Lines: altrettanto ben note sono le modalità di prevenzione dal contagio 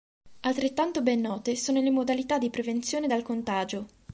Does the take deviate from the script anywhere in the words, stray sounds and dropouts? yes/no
no